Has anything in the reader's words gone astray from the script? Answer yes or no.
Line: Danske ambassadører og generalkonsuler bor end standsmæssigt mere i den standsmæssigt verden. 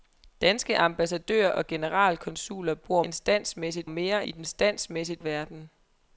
no